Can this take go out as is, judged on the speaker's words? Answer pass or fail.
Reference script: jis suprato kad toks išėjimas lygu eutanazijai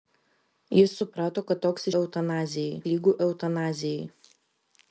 fail